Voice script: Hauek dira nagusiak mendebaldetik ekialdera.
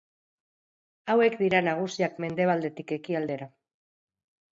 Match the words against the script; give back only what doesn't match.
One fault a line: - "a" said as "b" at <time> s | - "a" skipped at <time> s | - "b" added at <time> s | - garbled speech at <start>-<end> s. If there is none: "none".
none